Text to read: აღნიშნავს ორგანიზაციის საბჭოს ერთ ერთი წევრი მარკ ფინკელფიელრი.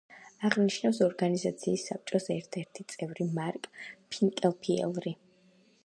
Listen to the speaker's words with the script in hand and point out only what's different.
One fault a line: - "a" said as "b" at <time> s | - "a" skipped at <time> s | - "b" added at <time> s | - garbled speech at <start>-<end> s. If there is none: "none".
none